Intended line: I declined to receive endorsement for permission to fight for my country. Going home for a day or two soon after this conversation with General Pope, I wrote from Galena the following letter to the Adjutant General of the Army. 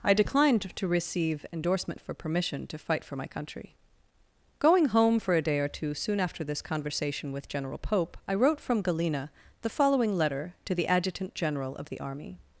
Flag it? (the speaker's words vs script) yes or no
no